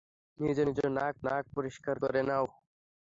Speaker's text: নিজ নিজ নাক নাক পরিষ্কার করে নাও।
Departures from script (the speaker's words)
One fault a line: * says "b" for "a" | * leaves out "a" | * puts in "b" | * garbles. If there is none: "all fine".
all fine